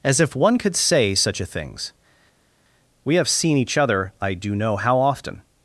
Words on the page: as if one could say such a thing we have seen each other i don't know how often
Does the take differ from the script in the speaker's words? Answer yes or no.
yes